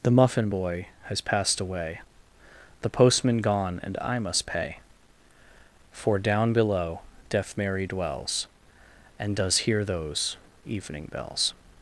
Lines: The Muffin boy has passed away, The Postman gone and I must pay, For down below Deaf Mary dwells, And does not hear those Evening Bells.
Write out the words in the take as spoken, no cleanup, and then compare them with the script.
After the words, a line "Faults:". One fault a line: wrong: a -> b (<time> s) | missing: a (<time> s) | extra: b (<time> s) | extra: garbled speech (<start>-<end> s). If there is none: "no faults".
The Muffin boy has passed away, The Postman gone and I must pay, For down below Deaf Mary dwells, And does hear those Evening Bells.
Faults:
missing: not (9.6 s)